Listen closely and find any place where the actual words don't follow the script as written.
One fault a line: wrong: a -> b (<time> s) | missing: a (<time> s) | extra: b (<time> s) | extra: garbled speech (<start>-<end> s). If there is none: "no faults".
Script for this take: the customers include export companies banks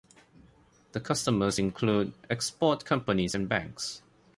extra: and (3.3 s)